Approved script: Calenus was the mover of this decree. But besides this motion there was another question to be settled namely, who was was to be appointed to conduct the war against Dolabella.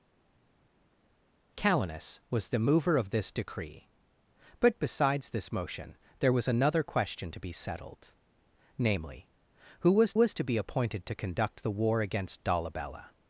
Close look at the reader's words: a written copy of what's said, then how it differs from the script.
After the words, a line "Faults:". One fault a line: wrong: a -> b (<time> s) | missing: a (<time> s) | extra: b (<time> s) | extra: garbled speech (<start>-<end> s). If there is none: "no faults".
Calenus was the mover of this decree. But besides this motion there was another question to be settled namely, who was was to be appointed to conduct the war against Dolabella.
Faults:
no faults